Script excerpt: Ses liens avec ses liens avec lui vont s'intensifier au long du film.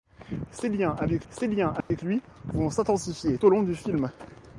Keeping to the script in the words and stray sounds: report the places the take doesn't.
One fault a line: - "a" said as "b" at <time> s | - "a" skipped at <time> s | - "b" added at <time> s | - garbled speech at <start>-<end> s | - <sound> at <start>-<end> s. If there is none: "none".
- dropout at 1.8-1.9 s